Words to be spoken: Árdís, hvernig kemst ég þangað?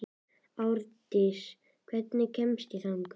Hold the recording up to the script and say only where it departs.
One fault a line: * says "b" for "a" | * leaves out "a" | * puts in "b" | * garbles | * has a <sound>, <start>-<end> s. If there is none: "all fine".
all fine